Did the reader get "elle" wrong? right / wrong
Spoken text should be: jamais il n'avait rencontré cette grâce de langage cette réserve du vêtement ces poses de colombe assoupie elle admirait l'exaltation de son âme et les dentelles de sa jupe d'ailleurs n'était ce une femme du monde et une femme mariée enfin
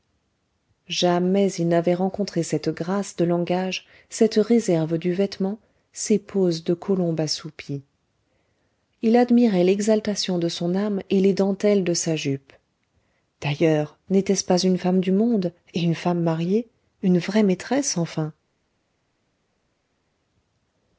wrong